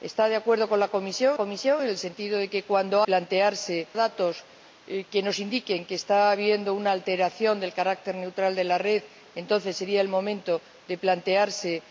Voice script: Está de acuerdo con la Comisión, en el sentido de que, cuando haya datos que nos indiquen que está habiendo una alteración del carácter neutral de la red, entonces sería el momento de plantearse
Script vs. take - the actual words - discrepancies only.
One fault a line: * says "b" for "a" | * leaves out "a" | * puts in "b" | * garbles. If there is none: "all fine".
* puts in "Comisión"
* says "plantearse" for "haya"